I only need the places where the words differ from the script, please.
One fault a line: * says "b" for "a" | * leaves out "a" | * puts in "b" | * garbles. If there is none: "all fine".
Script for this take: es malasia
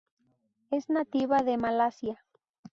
* puts in "nativa de"